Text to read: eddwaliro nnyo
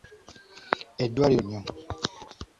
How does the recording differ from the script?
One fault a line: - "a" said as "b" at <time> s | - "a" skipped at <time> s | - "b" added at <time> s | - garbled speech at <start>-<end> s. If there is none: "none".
none